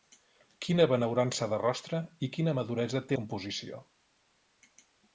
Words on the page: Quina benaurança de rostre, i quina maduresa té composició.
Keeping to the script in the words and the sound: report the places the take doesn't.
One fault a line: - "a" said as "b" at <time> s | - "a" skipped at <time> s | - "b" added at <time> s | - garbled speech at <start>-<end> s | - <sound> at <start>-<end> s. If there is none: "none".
none